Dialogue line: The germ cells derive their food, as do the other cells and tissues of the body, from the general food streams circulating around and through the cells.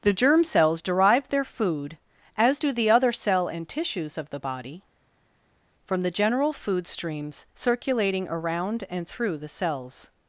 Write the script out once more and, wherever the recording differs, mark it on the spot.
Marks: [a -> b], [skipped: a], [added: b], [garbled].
The germ cells derive their food, as do the other [cells -> cell] and tissues of the body, from the general food streams circulating around and through the cells.